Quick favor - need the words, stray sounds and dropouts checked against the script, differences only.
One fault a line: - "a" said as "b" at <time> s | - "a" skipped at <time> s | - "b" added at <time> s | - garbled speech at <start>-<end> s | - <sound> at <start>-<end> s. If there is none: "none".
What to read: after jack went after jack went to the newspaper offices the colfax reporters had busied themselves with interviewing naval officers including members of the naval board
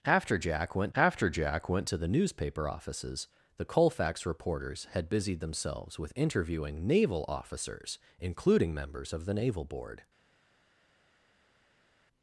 none